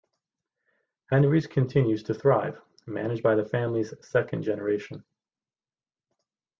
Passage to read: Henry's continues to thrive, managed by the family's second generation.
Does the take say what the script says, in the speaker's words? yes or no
yes